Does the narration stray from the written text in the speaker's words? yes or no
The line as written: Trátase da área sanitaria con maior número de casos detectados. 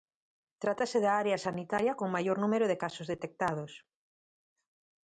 no